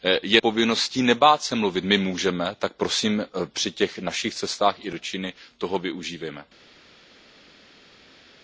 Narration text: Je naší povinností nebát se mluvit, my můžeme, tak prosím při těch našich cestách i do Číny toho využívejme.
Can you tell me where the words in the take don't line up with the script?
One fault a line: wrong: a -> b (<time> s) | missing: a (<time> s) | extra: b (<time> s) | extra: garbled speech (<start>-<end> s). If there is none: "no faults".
missing: naší (0.4 s)